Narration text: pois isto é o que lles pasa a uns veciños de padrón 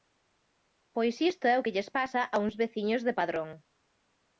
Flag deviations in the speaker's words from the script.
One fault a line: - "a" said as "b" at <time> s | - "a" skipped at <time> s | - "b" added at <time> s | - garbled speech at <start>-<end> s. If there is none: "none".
none